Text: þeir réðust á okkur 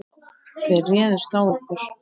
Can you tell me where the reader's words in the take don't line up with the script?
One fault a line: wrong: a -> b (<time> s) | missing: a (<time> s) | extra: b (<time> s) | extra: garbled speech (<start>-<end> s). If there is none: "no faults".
no faults